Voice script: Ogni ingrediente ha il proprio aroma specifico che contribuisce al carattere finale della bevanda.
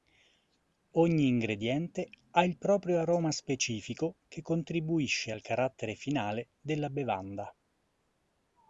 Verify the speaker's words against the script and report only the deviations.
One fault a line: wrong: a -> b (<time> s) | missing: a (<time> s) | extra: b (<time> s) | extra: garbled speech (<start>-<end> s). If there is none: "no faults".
no faults